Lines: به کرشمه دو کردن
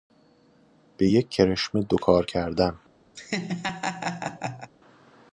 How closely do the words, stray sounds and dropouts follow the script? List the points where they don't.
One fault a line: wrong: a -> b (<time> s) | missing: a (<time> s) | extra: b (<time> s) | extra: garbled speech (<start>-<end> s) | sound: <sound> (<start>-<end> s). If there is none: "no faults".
extra: یک (1.0 s)
extra: کار (2.0 s)
sound: laugh (3.1-4.7 s)